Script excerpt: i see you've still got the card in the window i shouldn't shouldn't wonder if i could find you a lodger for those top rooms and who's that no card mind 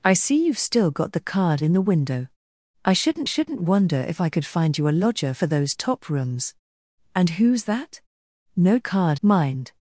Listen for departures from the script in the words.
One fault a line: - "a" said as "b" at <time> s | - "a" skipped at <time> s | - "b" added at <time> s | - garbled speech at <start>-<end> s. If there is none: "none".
none